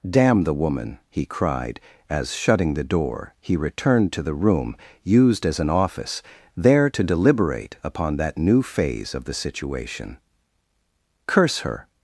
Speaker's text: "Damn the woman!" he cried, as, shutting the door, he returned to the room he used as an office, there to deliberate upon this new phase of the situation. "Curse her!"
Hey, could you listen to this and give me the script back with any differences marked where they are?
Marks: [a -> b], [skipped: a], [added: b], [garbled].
"Damn the woman!" he cried, as, shutting the door, he returned to the room [skipped: he] used as an office, there to deliberate upon [this -> that] new phase of the situation. "Curse her!"